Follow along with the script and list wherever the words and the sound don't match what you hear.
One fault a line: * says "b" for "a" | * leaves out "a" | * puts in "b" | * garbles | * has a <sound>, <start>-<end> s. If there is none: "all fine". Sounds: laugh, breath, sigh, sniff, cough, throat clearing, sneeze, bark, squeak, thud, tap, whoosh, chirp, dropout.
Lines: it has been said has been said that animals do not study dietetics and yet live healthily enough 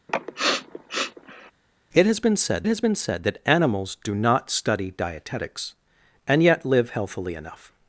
* has a sniff, 0.1-1.5 s